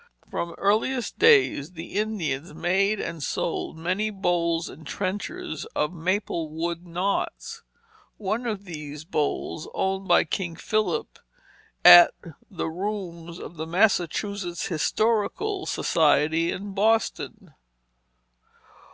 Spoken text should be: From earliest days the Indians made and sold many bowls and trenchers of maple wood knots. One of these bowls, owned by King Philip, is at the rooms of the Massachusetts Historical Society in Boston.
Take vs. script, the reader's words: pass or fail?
fail